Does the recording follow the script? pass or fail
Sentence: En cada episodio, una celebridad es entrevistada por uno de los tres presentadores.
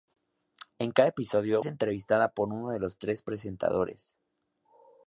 fail